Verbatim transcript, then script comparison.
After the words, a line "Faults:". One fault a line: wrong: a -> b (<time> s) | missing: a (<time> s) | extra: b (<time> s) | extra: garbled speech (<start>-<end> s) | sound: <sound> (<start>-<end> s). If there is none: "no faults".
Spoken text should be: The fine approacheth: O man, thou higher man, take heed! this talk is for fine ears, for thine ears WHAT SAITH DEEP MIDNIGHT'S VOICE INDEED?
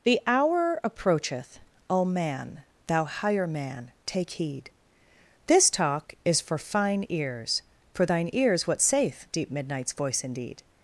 The hour approacheth: O man, thou higher man, take heed! this talk is for fine ears, for thine ears WHAT SAITH DEEP MIDNIGHT'S VOICE INDEED?
Faults:
wrong: fine -> hour (0.2 s)